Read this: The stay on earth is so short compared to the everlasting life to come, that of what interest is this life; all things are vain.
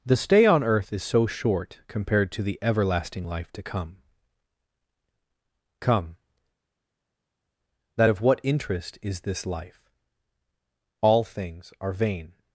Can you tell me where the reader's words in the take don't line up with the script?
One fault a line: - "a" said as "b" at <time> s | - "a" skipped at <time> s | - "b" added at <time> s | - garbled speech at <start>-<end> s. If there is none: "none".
- "come" added at 5.8 s